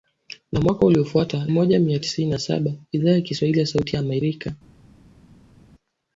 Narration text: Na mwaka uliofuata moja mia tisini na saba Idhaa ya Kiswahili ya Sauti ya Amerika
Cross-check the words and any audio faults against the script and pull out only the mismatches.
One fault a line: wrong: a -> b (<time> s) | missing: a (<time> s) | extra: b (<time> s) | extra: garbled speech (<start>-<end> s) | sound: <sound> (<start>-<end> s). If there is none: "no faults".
no faults